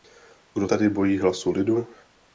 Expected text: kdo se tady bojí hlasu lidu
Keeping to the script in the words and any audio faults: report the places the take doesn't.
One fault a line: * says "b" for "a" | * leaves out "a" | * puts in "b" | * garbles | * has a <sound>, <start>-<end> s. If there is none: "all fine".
* leaves out "se"